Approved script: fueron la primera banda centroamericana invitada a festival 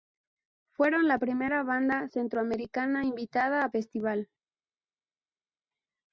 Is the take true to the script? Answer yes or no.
yes